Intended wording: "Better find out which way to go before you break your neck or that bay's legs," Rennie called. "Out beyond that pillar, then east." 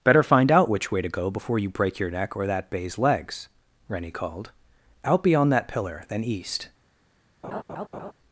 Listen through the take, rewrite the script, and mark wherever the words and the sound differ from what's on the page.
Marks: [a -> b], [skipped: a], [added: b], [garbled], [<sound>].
"Better find out which way to go before you break your neck or that bay's legs," Rennie called. "Out beyond that pillar, then east." [laugh]